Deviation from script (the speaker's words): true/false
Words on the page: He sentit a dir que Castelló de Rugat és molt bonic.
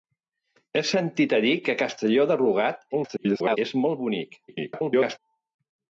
true